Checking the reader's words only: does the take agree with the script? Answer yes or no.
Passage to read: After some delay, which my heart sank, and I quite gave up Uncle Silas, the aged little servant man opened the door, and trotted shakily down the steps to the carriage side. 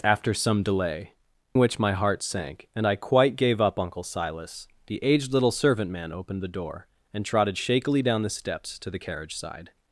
yes